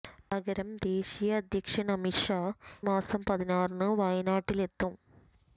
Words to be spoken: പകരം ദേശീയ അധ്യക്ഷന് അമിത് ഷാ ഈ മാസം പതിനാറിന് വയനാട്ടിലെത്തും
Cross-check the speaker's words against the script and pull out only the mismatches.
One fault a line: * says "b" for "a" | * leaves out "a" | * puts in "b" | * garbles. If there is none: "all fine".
* leaves out "ഈ"